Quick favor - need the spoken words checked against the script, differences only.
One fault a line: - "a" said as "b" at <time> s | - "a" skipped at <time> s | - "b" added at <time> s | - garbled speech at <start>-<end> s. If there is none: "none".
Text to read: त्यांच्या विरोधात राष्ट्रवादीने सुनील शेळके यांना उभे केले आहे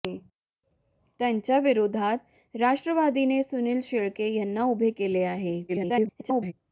- garbled speech at 5.7-6.5 s